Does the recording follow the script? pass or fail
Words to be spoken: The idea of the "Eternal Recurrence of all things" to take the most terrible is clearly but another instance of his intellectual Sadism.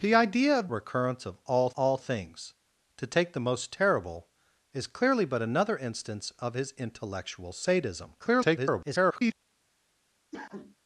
fail